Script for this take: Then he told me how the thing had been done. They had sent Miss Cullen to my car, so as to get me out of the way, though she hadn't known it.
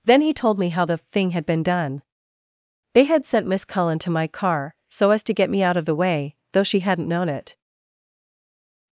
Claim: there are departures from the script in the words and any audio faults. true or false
false